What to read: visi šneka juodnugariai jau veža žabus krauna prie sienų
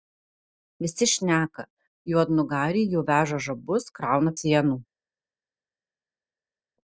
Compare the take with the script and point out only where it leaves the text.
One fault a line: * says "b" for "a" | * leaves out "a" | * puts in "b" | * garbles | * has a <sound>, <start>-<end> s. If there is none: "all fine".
* leaves out "prie"